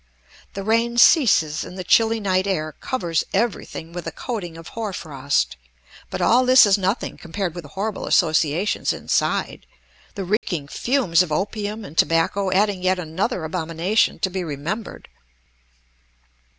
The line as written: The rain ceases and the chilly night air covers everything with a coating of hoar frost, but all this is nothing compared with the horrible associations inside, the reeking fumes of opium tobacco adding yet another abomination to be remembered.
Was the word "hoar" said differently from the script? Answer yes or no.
no